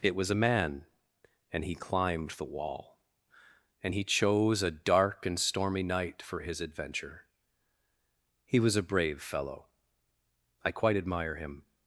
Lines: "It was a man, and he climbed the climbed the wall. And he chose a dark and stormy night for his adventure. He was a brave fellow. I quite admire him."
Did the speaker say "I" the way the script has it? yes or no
yes